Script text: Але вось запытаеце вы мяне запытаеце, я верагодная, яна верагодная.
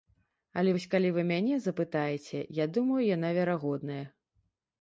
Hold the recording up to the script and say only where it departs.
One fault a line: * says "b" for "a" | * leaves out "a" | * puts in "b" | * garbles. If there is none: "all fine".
* says "калі" for "запытаеце"
* says "думаю" for "верагодная"